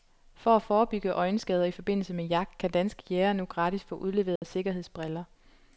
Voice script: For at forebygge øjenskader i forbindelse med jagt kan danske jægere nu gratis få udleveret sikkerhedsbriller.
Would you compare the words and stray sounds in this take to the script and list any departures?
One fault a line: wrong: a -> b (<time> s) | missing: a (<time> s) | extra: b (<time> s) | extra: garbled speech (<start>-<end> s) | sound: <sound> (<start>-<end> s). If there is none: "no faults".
sound: dropout (4.4-4.4 s)